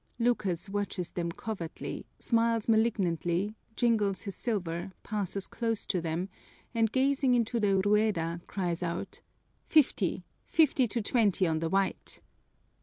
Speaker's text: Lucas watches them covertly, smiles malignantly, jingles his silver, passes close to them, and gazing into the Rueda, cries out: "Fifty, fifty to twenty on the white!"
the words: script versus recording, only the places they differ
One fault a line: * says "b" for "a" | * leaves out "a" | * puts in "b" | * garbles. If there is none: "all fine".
all fine